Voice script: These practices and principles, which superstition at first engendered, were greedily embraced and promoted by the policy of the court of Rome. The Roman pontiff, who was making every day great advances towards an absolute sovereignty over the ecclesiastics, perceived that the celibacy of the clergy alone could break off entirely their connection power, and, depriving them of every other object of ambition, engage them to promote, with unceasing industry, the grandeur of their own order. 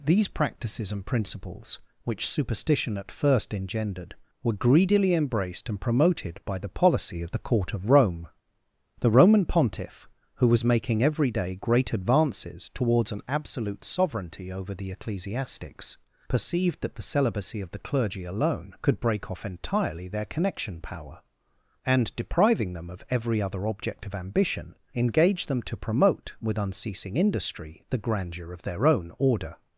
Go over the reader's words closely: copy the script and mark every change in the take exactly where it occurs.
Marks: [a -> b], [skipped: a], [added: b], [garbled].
These practices and principles, which superstition at first engendered, were greedily embraced and promoted by the policy of the court of Rome. The Roman pontiff, who was making every day great advances towards an absolute sovereignty over the ecclesiastics, perceived that the celibacy of the clergy alone could break off entirely their connection power, and, depriving them of every other object of ambition, engage them to promote, with unceasing industry, the grandeur of their own order.